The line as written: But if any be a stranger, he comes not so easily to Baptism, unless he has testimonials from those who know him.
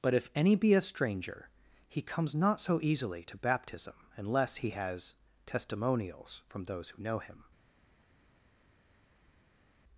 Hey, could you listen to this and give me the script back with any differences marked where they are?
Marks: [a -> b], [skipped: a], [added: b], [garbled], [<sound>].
But if any be a stranger, he comes not so easily to Baptism, unless he has testimonials from those who know him.